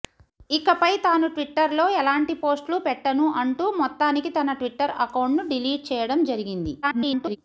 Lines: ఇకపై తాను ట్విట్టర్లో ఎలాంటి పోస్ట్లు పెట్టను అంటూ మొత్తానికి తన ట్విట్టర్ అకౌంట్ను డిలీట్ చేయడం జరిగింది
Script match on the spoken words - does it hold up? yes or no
no